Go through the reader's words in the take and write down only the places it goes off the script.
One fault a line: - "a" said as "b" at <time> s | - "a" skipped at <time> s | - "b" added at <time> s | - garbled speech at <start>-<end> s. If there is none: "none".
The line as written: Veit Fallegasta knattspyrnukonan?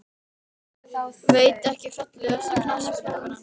- "ekki" added at 1.7 s